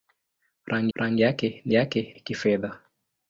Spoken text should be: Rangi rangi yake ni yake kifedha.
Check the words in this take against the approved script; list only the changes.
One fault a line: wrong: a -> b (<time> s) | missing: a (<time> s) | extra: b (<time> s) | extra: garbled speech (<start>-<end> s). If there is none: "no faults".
no faults